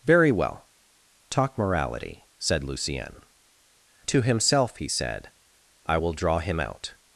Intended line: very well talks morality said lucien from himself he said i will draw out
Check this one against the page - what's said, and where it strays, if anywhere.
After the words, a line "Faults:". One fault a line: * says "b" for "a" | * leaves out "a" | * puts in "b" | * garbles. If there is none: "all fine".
very well talk morality said lucien to himself he said i will draw him out
Faults:
* says "talk" for "talks"
* says "to" for "from"
* puts in "him"